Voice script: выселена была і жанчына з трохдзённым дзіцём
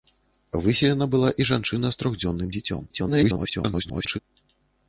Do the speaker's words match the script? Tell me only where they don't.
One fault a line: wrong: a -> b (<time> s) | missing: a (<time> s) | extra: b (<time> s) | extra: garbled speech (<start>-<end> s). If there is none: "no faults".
extra: garbled speech (2.9-4.2 s)